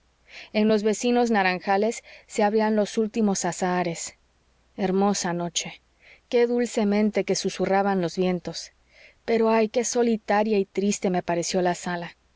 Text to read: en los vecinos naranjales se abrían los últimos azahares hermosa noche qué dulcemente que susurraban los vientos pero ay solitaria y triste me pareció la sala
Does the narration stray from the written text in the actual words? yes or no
yes